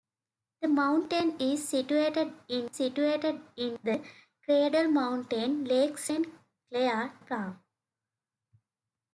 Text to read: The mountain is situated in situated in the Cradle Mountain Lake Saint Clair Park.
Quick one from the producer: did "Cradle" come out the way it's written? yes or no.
yes